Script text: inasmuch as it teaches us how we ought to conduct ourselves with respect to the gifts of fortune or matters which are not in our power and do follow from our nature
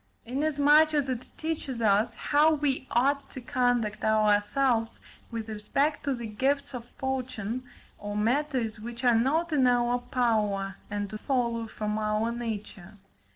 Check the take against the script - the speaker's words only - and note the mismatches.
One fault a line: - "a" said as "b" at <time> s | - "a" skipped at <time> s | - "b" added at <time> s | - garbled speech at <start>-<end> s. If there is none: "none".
none